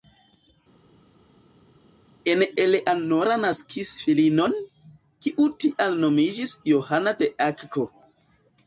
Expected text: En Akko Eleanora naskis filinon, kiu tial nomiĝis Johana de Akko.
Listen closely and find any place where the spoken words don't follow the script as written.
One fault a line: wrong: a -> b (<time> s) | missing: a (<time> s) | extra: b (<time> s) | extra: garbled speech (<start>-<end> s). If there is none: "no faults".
missing: Akko (2.4 s)